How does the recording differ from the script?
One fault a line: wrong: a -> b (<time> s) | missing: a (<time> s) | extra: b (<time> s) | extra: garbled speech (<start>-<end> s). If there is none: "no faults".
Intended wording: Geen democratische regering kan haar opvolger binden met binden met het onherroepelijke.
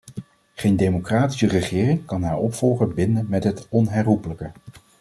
missing: binden met (3.4 s)